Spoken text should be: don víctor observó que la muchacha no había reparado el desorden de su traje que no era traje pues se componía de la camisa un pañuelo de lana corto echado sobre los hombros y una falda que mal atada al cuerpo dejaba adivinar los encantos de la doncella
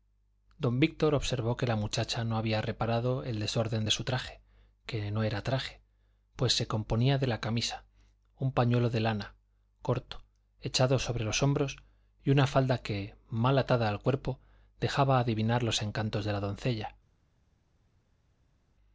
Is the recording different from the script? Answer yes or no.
no